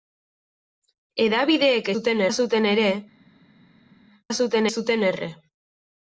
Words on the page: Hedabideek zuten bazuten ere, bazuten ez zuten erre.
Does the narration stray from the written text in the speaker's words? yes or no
no